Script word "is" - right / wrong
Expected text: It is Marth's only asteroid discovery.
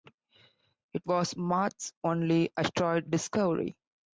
wrong